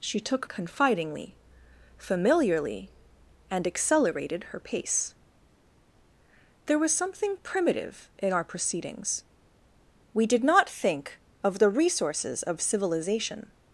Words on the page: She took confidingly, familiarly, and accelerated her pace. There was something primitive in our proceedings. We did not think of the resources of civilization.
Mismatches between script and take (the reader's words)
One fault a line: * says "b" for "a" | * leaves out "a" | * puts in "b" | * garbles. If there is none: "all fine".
all fine